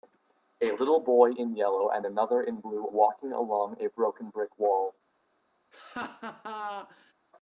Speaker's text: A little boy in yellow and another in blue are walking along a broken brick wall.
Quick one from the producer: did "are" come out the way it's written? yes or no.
no